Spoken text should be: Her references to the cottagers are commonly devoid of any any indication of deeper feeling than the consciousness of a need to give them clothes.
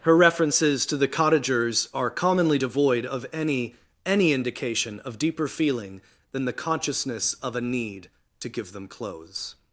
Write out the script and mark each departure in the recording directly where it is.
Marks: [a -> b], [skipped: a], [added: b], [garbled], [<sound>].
Her references to the cottagers are commonly devoid of any any indication of deeper feeling than the consciousness of a need to give them clothes.